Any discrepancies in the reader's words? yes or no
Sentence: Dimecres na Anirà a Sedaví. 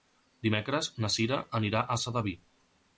yes